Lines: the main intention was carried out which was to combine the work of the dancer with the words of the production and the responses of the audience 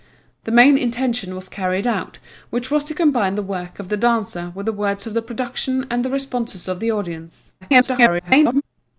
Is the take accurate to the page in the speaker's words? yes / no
no